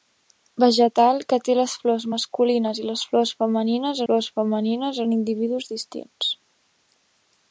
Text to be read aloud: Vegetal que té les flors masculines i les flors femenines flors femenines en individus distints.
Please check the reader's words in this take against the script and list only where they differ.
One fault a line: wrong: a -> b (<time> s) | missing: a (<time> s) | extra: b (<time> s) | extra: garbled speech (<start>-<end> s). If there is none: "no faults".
no faults